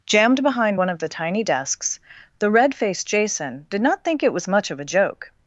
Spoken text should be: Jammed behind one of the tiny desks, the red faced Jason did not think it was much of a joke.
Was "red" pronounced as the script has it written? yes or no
yes